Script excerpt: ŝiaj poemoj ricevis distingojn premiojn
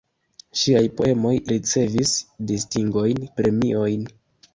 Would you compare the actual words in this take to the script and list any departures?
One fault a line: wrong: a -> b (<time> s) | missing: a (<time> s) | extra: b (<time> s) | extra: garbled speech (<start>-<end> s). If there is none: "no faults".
no faults